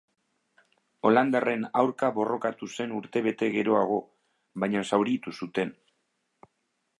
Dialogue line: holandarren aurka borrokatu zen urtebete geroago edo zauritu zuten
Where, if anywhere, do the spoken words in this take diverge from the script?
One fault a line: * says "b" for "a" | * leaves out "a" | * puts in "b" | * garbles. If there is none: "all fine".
* says "baina" for "edo"